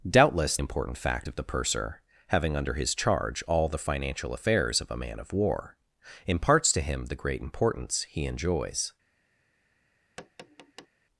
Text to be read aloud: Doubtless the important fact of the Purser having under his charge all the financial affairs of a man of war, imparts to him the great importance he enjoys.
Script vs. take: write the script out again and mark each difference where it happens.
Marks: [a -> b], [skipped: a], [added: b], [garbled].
Doubtless [skipped: the] important fact of the Purser having under his charge all the financial affairs of a man of war, imparts to him the great importance he enjoys.